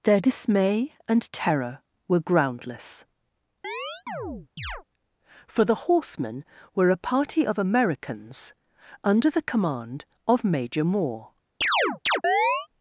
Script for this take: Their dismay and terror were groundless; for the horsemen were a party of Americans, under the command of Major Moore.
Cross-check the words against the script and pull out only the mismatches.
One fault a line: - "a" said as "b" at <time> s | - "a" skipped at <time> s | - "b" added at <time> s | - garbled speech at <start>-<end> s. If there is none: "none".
none